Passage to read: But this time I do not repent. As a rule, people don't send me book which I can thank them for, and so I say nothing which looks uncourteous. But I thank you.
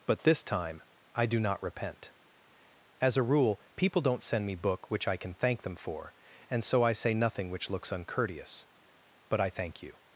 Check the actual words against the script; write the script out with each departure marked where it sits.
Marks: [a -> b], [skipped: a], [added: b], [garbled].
But this time I do not repent. As a rule, people don't send me book which I can thank them for, and so I say nothing which looks uncourteous. But I thank you.